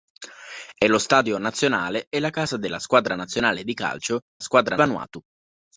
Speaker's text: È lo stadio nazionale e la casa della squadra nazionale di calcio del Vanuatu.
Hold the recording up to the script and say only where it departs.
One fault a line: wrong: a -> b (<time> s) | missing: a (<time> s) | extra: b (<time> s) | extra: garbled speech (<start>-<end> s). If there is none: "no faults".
wrong: del -> squadra (4.4 s)